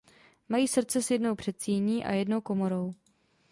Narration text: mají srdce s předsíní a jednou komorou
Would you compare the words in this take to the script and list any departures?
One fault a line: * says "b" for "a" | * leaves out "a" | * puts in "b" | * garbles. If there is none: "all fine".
* puts in "jednou"